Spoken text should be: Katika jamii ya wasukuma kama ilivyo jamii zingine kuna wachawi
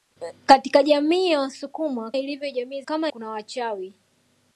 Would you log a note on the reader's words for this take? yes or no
yes